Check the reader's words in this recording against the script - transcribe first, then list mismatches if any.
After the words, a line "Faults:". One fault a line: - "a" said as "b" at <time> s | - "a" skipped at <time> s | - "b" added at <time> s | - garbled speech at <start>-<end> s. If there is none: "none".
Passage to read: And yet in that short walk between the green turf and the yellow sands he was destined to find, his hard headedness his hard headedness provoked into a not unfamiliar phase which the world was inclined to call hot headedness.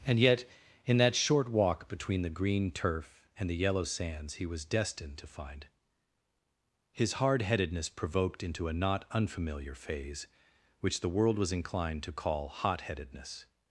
And yet in that short walk between the green turf and the yellow sands he was destined to find, his hard headedness provoked into a not unfamiliar phase which the world was inclined to call hot headedness.
Faults:
- "his hard headedness" skipped at 7.9 s